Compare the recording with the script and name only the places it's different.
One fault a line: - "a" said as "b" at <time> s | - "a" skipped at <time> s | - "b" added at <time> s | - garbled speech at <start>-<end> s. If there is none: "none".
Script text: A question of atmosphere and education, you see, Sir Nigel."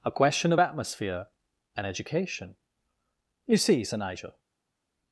none